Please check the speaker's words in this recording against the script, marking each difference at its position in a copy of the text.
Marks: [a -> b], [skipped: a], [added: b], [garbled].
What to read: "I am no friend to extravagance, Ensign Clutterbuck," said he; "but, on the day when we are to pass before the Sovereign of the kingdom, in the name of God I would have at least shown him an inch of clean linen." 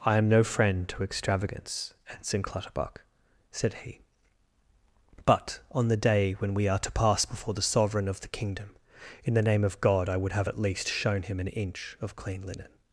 "I am no friend to extravagance, Ensign Clutterbuck," said he; "but, on the day when we are to pass before the Sovereign of the kingdom, in the name of God I would have at least shown him an inch of clean linen."